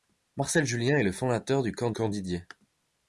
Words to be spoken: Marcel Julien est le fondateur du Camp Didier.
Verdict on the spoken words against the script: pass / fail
fail